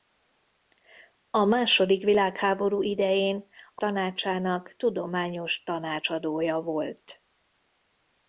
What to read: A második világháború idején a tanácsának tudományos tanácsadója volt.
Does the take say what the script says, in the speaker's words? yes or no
yes